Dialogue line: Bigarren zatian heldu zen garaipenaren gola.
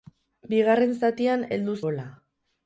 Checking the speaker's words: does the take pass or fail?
fail